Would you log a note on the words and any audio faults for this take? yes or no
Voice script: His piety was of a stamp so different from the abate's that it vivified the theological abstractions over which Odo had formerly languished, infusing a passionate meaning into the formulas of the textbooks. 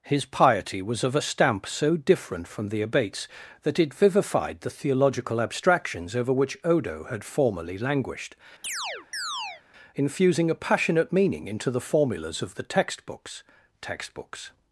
yes